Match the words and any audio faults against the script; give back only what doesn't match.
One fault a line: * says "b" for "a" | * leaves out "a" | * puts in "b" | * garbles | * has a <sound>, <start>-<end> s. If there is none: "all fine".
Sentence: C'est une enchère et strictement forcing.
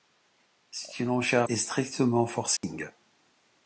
* has a dropout, 2.6-2.6 s